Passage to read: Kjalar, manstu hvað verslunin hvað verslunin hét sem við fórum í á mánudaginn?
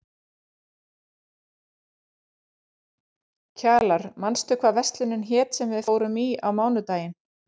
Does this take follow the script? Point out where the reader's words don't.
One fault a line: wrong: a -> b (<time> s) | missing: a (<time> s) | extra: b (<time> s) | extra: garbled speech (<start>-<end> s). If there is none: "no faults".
missing: hvað verslunin (5.3 s)